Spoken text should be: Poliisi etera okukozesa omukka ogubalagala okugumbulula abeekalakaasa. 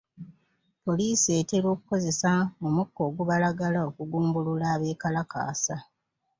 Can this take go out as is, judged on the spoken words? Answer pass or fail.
pass